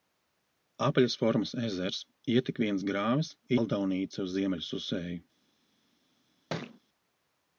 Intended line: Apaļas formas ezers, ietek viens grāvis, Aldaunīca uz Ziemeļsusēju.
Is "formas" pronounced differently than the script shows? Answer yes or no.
no